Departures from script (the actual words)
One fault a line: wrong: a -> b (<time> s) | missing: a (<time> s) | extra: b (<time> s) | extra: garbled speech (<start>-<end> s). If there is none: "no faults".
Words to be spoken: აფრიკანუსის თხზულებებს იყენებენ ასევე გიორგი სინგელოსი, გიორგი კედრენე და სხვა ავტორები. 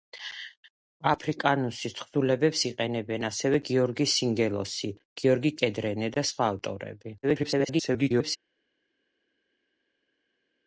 extra: garbled speech (7.2-8.4 s)